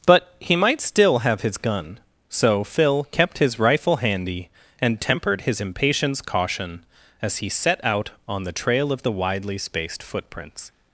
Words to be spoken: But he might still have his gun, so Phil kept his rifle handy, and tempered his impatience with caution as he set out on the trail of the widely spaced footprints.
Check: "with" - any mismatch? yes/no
yes